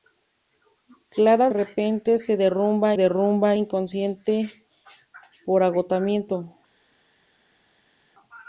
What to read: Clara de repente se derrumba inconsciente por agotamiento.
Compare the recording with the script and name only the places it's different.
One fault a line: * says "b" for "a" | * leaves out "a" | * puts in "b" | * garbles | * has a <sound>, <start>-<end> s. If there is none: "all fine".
* leaves out "de"
* puts in "derrumba"